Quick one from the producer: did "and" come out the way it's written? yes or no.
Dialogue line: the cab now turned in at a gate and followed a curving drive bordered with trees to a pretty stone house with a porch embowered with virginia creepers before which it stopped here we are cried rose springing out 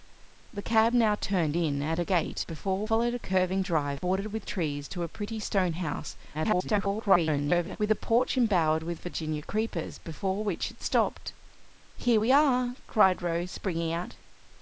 no